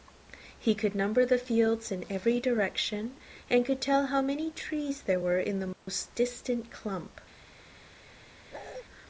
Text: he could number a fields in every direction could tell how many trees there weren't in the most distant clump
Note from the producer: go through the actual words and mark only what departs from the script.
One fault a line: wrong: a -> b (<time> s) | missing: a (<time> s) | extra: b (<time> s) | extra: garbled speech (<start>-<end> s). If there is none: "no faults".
wrong: a -> the (1.3 s)
extra: and (3.5 s)
wrong: weren't -> were (5.2 s)